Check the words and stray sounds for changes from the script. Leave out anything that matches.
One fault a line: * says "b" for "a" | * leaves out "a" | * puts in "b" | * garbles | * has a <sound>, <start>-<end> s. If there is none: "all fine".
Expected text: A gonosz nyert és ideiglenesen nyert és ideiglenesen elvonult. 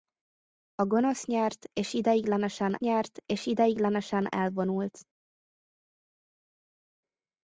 all fine